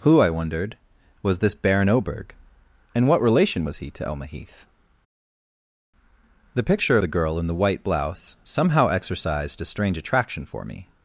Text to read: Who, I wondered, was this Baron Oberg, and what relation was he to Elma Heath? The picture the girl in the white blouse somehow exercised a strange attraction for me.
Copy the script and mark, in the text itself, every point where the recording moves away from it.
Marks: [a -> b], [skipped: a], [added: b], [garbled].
Who, I wondered, was this Baron Oberg, and what relation was he to Elma Heath? The picture the girl in the white blouse somehow exercised a strange attraction for me.